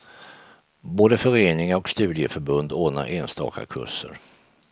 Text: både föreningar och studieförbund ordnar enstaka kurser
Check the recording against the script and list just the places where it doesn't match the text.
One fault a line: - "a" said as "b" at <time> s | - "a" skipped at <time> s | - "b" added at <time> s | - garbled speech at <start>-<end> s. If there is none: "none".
none